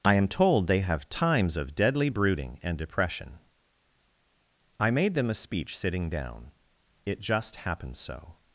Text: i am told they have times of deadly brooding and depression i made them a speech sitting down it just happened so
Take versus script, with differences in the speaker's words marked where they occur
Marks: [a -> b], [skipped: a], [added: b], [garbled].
i am told they have times of deadly brooding and depression i made them a speech sitting down it just happened so